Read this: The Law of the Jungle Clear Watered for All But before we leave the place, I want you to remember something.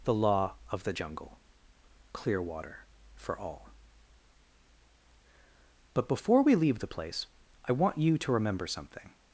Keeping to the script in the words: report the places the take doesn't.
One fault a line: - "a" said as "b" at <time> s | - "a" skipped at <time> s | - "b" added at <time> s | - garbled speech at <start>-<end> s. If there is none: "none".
- "Watered" said as "Water" at 2.4 s